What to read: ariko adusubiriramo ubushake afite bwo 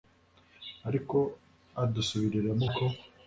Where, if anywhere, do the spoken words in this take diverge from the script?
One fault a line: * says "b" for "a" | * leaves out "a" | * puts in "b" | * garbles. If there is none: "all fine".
* leaves out "ubushake afite"